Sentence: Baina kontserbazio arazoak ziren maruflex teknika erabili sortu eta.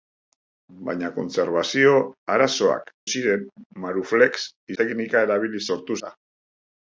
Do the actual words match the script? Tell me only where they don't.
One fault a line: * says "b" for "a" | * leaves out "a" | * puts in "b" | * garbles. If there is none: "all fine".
all fine